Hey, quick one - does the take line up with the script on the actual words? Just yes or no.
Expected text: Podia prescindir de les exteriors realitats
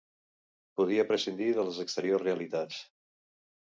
yes